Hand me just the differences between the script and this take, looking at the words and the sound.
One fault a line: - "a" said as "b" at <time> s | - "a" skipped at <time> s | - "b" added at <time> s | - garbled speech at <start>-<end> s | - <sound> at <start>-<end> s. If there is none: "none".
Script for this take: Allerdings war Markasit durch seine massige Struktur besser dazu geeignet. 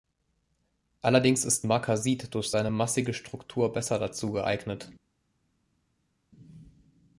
- "war" said as "ist" at 1.4 s